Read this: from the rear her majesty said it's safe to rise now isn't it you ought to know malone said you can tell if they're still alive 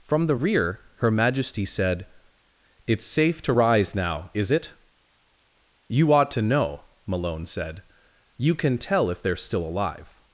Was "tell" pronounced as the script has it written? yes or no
yes